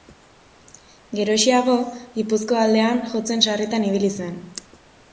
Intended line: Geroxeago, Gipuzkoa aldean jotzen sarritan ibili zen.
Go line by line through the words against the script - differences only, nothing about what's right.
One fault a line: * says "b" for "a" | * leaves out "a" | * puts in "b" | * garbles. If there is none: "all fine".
all fine